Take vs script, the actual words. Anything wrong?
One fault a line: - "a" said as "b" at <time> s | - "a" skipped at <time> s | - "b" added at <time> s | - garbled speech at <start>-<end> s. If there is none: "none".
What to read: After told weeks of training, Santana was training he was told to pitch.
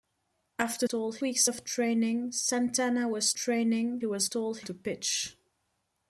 none